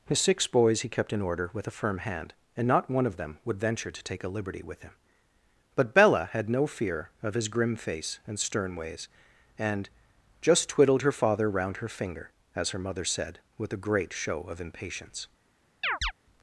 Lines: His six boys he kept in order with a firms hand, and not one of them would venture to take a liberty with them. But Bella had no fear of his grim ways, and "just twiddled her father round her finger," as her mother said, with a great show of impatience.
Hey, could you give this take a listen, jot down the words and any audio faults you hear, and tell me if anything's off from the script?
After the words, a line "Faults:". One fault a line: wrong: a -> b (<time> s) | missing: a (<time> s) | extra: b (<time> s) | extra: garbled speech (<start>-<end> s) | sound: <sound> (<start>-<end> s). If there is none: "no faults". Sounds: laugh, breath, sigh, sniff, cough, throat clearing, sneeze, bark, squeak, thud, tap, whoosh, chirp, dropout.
His six boys he kept in order with a firm hand, and not one of them would venture to take a liberty with him. But Bella had no fear of his grim face and stern ways, and "just twiddled her father round her finger," as her mother said, with a great show of impatience.
Faults:
wrong: firms -> firm (1.8 s)
wrong: them -> him (4.8 s)
extra: face and stern (7.8 s)
sound: chirp (15.8-16.1 s)